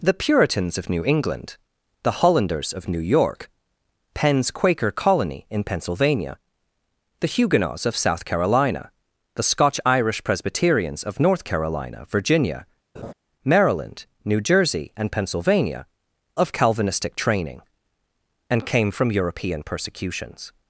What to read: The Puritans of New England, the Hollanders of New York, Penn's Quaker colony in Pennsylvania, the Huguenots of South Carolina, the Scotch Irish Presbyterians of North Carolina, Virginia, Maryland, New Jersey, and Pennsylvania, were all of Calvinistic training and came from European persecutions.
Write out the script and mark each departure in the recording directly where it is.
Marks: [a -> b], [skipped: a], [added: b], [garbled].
The Puritans of New England, the Hollanders of New York, Penn's Quaker colony in Pennsylvania, the Huguenots of South Carolina, the Scotch Irish Presbyterians of North Carolina, Virginia, Maryland, New Jersey, and Pennsylvania, [skipped: were all] of Calvinistic training and came from European persecutions.